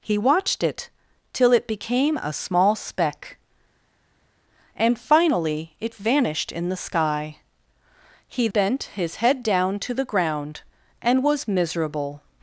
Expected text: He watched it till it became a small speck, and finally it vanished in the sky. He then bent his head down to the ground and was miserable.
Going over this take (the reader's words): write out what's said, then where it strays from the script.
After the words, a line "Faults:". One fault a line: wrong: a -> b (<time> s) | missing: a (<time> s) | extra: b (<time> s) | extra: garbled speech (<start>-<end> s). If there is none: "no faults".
He watched it till it became a small speck, and finally it vanished in the sky. He bent his head down to the ground and was miserable.
Faults:
missing: then (8.5 s)